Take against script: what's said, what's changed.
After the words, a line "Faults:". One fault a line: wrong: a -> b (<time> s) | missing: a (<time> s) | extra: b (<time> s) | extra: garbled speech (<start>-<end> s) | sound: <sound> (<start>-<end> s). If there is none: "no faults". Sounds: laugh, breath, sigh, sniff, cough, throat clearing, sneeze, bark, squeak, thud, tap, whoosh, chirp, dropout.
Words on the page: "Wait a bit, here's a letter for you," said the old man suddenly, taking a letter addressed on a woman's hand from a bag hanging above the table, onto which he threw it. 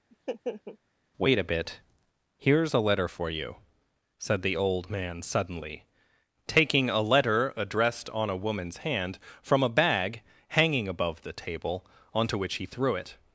"Wait a bit, here's a letter for you," said the old man suddenly, taking a letter addressed on a woman's hand from a bag hanging above the table, onto which he threw it.
Faults:
sound: laugh (0.1-0.8 s)